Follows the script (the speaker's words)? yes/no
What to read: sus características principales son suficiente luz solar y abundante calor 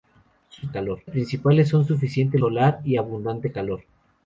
no